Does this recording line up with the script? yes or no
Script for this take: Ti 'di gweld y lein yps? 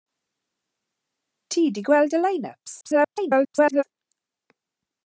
no